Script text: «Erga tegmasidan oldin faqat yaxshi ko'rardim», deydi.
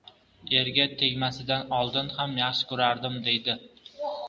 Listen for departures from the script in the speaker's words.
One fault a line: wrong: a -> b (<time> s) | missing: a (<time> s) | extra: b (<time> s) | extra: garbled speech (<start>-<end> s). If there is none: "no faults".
wrong: faqat -> ham (2.2 s)